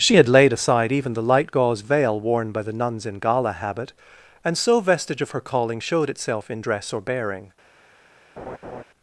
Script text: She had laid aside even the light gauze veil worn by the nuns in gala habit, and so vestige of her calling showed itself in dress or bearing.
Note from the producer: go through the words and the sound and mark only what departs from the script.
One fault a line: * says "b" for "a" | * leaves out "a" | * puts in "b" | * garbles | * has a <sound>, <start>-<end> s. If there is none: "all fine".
* has a laugh, 8.4-8.8 s